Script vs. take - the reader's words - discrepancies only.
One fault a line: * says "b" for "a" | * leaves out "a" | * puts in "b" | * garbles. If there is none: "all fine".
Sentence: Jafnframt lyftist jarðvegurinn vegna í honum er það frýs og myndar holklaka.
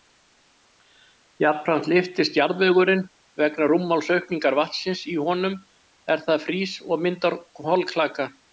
* puts in "rúmmálsaukningar vatnsins"